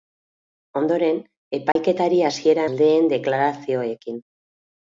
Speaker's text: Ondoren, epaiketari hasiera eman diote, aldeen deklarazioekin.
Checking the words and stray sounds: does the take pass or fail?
fail